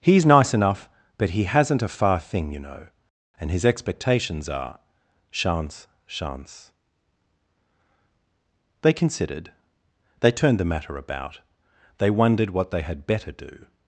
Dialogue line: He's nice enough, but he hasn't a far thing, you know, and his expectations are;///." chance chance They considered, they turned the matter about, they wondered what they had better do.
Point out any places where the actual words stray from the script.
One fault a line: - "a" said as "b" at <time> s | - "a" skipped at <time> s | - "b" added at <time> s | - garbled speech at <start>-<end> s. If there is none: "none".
none